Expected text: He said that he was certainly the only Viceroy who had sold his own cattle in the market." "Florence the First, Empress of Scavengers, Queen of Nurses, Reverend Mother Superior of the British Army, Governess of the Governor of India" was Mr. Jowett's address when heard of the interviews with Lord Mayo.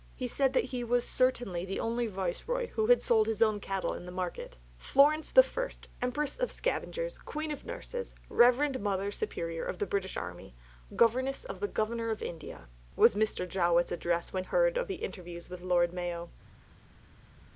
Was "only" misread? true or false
false